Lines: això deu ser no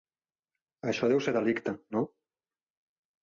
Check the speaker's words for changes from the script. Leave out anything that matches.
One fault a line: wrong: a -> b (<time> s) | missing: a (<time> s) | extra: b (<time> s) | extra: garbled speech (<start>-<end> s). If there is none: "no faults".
extra: delicte (1.4 s)